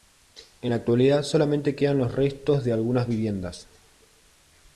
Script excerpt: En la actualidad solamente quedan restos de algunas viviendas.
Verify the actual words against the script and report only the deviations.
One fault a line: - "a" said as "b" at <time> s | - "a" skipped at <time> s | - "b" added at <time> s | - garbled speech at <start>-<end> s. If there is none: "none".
- "los" added at 2.0 s